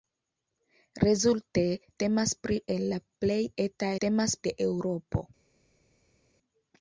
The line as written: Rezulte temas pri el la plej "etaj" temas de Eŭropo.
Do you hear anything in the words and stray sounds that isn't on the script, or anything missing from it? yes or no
no